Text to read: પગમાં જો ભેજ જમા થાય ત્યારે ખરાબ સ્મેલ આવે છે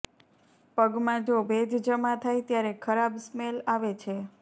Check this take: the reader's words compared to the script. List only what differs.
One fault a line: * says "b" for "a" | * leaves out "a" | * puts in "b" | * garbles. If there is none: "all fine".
all fine